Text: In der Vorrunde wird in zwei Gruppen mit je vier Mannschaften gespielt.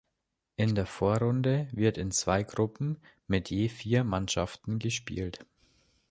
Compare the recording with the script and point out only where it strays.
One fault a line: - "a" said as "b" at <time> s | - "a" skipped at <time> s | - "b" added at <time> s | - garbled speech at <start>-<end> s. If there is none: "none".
none